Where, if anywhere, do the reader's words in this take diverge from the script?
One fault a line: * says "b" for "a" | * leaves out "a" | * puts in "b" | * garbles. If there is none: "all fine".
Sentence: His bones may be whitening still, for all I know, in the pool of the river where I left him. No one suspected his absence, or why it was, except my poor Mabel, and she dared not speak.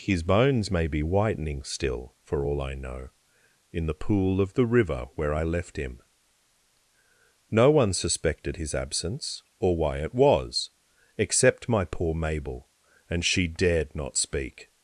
all fine